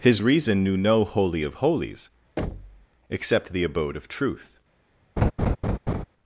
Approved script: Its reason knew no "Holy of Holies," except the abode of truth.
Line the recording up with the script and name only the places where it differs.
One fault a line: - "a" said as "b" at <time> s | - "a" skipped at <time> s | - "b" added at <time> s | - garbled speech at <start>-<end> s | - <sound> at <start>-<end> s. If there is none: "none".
- "Its" said as "His" at 0.0 s
- thud at 2.4-2.9 s
- laugh at 5.2-6.0 s